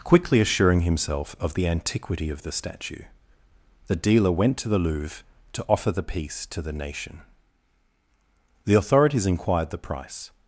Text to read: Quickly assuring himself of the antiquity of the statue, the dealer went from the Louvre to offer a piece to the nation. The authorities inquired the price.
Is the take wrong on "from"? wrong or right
wrong